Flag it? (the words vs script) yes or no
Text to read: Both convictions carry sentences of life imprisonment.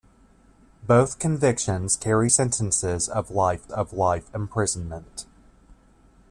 yes